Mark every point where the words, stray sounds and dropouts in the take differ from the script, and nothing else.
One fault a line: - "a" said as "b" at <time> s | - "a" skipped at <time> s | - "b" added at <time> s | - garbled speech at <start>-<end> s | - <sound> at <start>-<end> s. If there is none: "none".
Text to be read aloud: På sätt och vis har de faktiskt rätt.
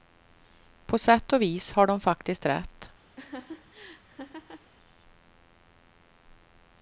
- laugh at 3.2-4.7 s